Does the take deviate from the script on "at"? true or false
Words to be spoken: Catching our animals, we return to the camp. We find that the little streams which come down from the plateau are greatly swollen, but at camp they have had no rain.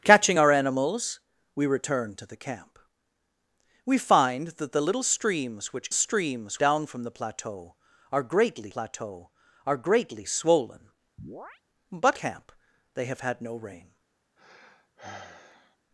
true